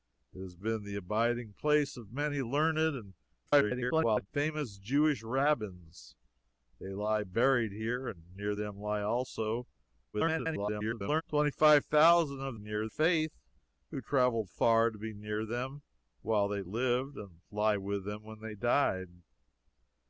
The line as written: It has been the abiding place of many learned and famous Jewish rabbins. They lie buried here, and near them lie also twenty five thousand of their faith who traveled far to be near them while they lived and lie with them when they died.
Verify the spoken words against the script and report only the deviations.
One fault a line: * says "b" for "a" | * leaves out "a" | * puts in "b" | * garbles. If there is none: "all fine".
* garbles
* garbles
* says "near" for "their"